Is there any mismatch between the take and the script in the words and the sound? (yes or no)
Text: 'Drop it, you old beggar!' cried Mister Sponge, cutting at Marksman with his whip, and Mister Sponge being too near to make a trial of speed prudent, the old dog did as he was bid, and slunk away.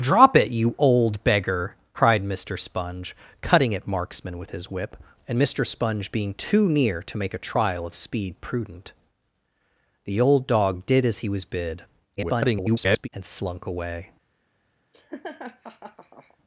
yes